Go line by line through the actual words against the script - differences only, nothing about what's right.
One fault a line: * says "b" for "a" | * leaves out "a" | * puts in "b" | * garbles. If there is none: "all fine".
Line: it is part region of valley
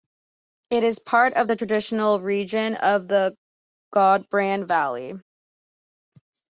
* puts in "of the traditional"
* puts in "the gudbrand"